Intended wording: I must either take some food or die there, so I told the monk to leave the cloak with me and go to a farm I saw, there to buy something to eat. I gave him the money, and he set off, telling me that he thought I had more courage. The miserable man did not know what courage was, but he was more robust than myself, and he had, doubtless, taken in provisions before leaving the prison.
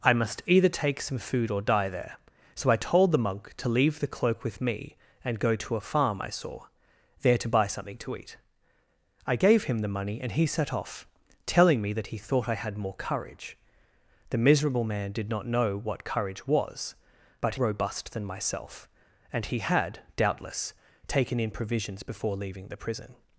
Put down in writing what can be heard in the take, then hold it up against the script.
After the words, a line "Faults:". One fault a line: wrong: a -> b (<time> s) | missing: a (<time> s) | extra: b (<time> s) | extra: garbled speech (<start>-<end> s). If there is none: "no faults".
I must either take some food or die there, so I told the monk to leave the cloak with me and go to a farm I saw, there to buy something to eat. I gave him the money, and he set off, telling me that he thought I had more courage. The miserable man did not know what courage was, but robust than myself, and he had, doubtless, taken in provisions before leaving the prison.
Faults:
missing: he was more (17.6 s)